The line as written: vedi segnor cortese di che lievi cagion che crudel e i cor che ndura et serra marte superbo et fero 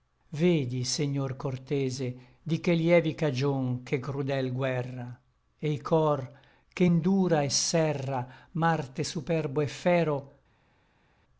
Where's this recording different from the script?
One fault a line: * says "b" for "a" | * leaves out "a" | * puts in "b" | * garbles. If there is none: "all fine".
* puts in "guerra"